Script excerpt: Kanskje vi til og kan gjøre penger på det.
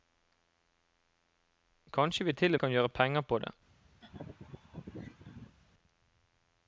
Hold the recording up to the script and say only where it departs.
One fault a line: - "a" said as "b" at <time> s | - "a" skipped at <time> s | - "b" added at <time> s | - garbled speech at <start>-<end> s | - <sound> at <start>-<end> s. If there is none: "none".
- laugh at 4.0-5.6 s